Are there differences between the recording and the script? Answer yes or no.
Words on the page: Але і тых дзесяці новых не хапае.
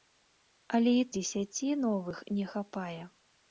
yes